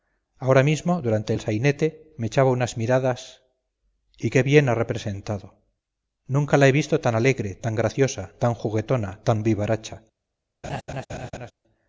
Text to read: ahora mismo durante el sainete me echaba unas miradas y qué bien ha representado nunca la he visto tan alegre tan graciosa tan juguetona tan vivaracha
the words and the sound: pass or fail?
fail